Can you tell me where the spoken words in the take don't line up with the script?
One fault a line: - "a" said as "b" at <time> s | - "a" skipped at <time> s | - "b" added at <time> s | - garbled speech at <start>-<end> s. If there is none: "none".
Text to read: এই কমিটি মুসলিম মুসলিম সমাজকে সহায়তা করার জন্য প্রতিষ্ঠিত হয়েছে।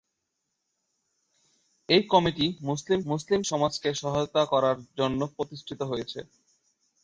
none